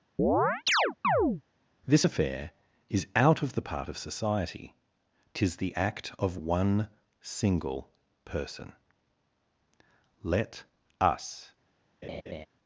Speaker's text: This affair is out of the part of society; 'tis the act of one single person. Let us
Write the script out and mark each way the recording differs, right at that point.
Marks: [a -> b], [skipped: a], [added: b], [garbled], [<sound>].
[chirp] This affair is out of the part of society; 'tis the act of one single person. Let us [laugh]